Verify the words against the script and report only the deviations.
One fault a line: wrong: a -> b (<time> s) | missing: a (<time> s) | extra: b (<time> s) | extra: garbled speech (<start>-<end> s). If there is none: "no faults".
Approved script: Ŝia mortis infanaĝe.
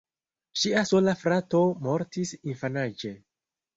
extra: sola frato (0.9 s)